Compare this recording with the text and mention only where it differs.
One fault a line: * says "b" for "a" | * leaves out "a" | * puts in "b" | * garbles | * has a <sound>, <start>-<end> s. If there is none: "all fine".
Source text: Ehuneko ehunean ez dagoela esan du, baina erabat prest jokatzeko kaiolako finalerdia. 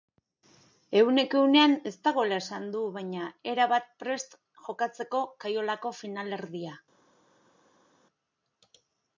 all fine